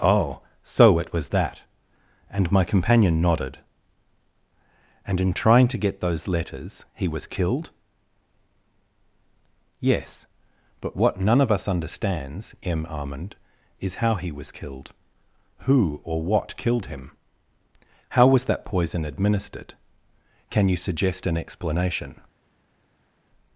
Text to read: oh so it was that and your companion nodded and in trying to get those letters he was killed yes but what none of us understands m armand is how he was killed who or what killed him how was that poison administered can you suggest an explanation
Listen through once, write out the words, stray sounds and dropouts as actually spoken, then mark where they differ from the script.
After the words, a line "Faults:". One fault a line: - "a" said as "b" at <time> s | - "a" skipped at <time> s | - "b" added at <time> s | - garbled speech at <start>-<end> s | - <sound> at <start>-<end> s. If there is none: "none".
oh so it was that and my companion nodded and in trying to get those letters he was killed yes but what none of us understands m armand is how he was killed who or what killed him how was that poison administered can you suggest an explanation
Faults:
- "your" said as "my" at 2.5 s